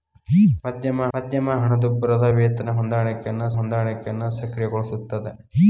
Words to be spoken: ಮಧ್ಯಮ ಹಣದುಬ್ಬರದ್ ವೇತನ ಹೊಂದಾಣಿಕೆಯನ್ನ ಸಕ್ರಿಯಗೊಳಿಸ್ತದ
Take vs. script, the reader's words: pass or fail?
fail